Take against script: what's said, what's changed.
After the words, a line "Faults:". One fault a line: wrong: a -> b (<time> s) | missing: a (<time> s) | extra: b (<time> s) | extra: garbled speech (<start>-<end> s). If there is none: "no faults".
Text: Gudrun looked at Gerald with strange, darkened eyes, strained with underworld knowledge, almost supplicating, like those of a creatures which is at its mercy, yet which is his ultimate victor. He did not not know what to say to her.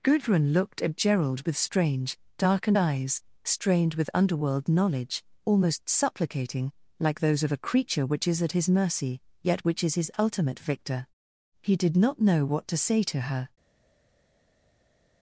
Gudrun looked at Gerald with strange, darkened eyes, strained with underworld knowledge, almost supplicating, like those of a creature which is at his mercy, yet which is his ultimate victor. He did not know what to say to her.
Faults:
wrong: creatures -> creature (7.6 s)
wrong: its -> his (8.5 s)
missing: not (12.2 s)